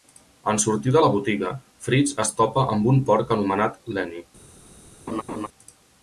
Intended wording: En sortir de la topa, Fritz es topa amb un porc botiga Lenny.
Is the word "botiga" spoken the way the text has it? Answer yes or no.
no